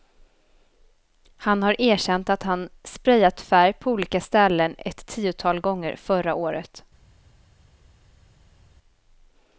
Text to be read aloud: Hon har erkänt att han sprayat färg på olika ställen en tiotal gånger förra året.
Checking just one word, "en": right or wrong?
wrong